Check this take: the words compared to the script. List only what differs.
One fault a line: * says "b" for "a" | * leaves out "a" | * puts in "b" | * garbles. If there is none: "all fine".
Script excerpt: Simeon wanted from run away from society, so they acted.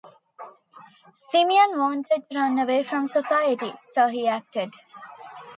* says "to" for "from"
* says "he" for "they"